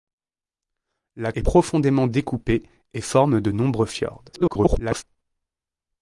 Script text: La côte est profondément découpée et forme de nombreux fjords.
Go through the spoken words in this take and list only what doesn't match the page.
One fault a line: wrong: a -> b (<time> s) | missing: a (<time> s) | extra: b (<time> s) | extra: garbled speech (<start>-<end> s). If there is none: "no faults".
missing: côte (1.3 s)
extra: garbled speech (4.3-5.0 s)